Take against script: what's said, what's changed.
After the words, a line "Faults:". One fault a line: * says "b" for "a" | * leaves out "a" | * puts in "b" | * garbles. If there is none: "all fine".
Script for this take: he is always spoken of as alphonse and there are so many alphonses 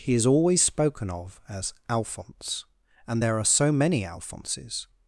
he is always spoken of as alphonse and there are so many alphonses
Faults:
all fine